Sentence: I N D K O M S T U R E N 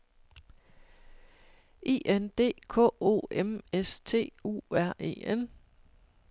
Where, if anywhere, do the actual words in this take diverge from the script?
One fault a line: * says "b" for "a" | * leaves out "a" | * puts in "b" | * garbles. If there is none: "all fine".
all fine